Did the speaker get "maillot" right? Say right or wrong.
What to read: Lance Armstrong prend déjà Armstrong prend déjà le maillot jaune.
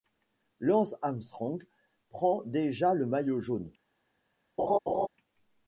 right